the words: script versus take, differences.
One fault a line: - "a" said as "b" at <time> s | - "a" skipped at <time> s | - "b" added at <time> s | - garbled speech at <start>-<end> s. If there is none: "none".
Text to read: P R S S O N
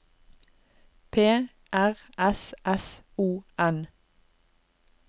none